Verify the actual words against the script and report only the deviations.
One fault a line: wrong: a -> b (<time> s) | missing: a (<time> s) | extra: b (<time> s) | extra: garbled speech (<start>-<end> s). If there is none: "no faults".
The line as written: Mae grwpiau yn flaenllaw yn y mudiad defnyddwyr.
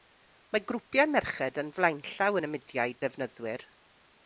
extra: merched (1.1 s)